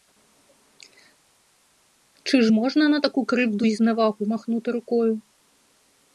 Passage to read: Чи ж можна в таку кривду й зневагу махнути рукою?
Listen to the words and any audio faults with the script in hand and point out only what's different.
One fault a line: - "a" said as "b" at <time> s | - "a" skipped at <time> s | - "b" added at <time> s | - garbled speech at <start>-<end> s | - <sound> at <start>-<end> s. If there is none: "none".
- "в" said as "на" at 2.9 s